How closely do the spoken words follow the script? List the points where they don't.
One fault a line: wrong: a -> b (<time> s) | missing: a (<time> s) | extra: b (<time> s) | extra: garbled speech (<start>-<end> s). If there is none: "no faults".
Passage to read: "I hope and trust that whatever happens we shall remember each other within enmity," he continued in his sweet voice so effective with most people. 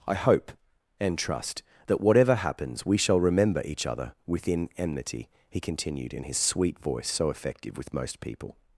no faults